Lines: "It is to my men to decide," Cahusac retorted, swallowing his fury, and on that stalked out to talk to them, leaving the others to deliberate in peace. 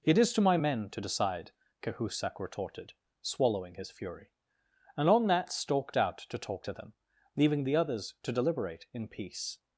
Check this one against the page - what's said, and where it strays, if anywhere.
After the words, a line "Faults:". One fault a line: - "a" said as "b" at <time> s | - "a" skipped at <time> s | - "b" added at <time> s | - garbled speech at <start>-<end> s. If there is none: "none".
"It is to my men to decide," Cahusac retorted, swallowing his fury, and on that stalked out to talk to them, leaving the others to deliberate in peace.
Faults:
none